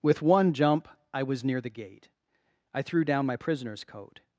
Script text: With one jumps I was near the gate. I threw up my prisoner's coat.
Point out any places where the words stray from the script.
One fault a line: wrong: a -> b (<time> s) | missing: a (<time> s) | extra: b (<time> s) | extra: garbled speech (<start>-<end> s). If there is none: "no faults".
wrong: jumps -> jump (0.5 s)
wrong: up -> down (3.0 s)